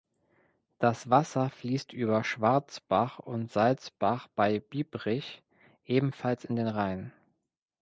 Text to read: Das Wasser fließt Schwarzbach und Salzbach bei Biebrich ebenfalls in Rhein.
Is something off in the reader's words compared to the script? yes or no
yes